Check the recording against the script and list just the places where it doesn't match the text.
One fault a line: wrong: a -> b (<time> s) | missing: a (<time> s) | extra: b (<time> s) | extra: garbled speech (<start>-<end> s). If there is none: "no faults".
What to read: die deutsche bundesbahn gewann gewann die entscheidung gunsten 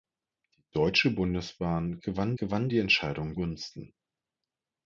no faults